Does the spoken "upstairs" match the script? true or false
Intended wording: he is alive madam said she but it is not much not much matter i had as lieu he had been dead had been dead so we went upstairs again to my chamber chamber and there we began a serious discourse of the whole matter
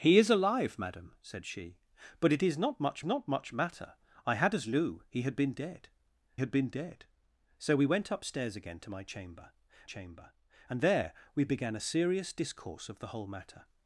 true